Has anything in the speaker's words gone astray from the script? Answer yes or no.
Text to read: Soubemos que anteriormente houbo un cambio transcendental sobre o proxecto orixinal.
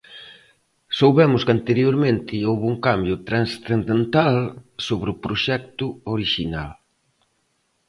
no